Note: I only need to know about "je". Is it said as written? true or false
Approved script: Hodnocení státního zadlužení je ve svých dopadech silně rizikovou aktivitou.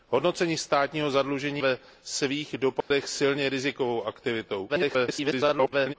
false